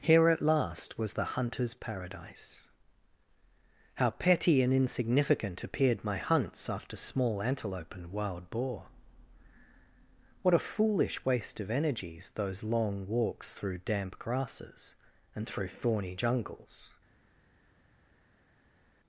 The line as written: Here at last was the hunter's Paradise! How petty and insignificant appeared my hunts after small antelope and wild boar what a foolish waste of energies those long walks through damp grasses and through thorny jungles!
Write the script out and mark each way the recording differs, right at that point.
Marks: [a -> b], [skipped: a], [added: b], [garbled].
Here at last was the hunter's Paradise! How petty and insignificant appeared my hunts after small antelope and wild boar what a foolish waste of energies those long walks through damp grasses and through thorny jungles!